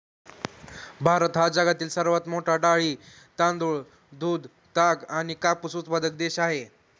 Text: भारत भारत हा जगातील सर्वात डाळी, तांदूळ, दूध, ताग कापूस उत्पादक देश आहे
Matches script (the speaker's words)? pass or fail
fail